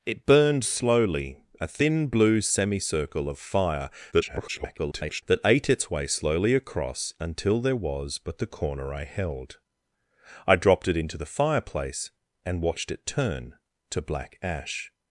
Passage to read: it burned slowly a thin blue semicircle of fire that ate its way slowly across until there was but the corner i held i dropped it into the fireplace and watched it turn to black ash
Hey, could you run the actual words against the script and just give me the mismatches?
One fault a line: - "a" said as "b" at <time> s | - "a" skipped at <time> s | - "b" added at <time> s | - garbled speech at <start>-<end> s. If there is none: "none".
- garbled speech at 4.1-5.2 s